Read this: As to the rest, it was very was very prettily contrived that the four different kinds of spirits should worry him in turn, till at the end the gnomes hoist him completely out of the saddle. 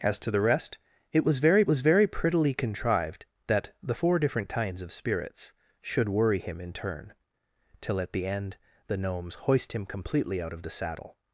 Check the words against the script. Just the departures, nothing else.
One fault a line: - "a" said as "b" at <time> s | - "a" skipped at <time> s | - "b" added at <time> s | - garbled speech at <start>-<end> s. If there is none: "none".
none